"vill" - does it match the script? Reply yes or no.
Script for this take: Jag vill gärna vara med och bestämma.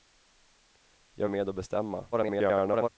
no